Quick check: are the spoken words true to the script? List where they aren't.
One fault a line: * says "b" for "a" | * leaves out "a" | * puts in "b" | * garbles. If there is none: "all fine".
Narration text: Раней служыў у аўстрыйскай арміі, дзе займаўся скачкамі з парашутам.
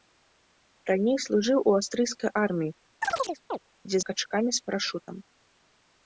* leaves out "займаўся"